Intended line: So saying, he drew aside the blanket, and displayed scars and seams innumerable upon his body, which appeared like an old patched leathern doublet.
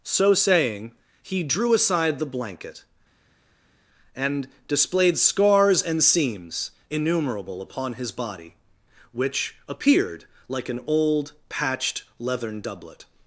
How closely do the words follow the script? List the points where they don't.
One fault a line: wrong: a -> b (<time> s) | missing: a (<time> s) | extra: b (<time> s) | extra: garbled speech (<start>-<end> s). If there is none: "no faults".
no faults